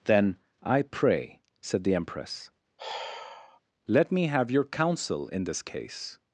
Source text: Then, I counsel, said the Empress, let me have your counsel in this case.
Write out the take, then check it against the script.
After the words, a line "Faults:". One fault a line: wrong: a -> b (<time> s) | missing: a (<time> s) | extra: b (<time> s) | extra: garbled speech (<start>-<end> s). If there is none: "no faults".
Then, I pray, said the Empress, let me have your counsel in this case.
Faults:
wrong: counsel -> pray (0.8 s)